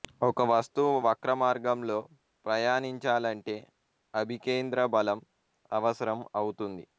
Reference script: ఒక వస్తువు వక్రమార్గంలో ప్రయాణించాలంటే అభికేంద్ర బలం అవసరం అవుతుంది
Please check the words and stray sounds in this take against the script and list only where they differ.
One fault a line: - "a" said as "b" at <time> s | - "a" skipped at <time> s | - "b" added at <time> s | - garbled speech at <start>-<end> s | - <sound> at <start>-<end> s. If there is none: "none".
none